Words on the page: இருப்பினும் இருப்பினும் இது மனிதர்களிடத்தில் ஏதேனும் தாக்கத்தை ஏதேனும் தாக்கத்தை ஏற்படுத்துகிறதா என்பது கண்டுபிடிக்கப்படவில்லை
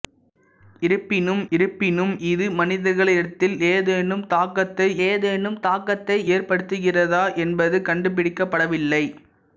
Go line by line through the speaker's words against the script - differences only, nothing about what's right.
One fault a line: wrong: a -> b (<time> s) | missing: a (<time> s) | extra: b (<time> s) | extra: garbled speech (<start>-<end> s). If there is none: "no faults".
no faults